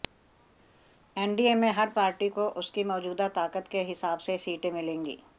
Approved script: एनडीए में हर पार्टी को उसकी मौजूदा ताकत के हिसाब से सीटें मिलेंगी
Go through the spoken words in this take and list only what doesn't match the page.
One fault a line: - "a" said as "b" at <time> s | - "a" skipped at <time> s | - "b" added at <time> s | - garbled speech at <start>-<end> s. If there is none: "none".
none